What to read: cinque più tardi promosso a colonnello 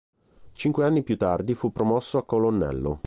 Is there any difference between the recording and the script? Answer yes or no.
yes